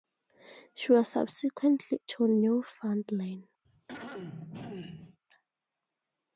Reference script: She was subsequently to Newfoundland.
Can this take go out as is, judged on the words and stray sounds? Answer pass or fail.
fail